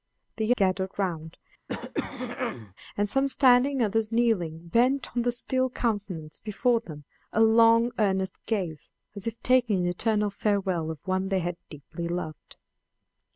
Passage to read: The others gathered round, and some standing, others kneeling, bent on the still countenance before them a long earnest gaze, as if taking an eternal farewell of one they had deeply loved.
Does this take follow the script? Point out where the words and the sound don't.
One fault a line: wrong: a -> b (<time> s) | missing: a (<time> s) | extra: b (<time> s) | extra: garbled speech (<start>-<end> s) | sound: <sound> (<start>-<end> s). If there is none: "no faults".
missing: others (0.6 s)
sound: throat clearing (1.7-2.7 s)